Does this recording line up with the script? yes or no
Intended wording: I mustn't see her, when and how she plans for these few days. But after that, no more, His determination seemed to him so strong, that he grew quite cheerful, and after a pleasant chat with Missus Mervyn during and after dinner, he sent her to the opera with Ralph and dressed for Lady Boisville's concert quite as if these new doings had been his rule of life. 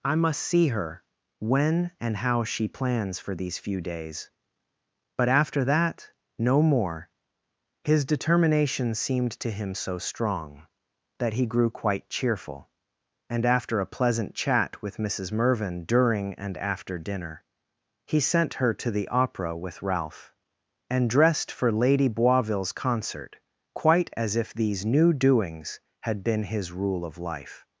no